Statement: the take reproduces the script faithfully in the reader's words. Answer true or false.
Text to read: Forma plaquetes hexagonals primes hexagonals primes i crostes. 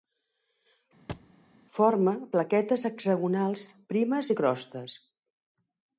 false